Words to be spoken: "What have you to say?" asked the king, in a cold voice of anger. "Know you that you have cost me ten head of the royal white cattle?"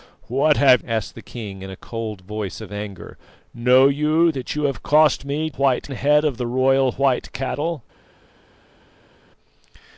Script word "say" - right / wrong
wrong